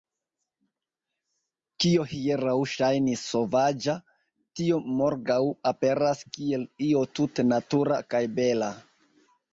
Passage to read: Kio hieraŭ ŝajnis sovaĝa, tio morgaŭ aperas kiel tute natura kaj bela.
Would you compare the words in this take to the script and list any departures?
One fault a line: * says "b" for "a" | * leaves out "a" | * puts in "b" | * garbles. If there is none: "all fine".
* puts in "io"